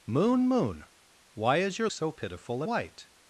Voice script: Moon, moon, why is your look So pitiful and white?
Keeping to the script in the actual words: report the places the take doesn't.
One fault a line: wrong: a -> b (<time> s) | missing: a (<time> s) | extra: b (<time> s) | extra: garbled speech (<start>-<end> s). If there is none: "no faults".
missing: look (1.9 s)
missing: and (2.6 s)